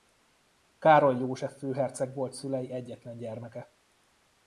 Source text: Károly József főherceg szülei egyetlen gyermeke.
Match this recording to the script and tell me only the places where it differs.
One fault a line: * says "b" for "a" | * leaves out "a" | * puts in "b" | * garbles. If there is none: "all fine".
* puts in "volt"